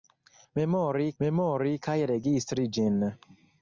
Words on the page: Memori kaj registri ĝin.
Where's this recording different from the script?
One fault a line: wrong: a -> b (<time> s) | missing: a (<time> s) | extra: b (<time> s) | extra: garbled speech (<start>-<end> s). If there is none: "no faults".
extra: memori (1.2 s)